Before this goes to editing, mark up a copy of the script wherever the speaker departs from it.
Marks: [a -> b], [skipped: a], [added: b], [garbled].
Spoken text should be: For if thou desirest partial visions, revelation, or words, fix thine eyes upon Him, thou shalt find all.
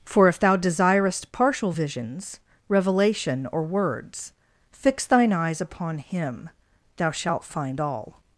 For if thou desirest partial visions, revelation, or words, fix thine eyes upon Him, thou shalt find all.